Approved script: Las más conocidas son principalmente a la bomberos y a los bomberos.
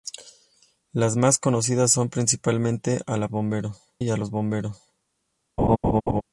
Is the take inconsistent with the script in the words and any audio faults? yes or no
yes